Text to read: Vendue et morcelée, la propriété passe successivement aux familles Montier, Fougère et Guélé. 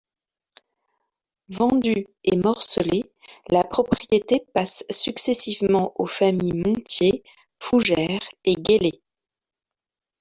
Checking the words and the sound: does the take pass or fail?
pass